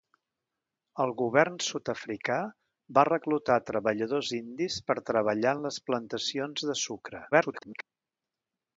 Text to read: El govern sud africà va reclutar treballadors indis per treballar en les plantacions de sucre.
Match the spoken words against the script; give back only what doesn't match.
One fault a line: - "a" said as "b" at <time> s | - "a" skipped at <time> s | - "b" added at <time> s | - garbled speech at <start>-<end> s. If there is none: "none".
- garbled speech at 7.3-7.8 s